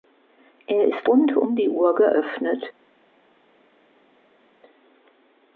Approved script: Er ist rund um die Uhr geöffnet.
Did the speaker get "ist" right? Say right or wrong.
right